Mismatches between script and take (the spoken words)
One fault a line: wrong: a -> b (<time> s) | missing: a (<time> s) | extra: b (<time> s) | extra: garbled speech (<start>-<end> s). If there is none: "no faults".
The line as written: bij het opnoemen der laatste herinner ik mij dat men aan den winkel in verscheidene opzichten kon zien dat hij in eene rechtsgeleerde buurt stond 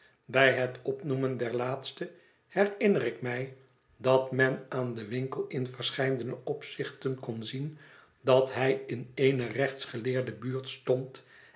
no faults